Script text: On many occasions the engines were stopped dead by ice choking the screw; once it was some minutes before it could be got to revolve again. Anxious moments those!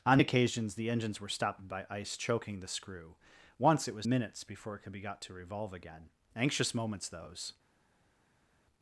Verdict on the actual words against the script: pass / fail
fail